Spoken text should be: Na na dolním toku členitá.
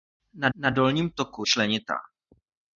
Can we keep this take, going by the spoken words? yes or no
yes